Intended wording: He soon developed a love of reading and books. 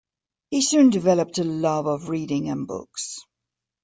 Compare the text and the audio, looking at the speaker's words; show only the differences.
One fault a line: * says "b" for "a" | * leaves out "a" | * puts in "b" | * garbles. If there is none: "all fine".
all fine